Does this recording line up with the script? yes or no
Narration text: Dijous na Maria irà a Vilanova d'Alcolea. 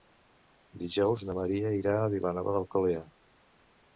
yes